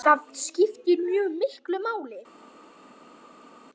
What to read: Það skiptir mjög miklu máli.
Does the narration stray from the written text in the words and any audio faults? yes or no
no